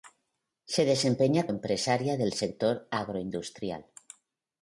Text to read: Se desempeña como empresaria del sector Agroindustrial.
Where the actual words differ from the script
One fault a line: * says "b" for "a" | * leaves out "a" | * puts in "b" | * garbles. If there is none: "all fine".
* leaves out "como"